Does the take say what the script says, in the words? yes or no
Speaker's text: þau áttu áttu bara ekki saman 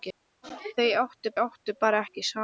yes